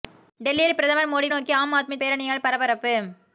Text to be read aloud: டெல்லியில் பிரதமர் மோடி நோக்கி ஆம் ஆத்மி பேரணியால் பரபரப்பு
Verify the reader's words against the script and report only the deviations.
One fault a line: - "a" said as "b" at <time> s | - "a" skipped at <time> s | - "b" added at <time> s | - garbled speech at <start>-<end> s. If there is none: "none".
none